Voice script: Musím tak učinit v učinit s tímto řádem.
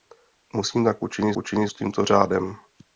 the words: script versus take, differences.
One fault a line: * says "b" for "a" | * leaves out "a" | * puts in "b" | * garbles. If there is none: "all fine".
all fine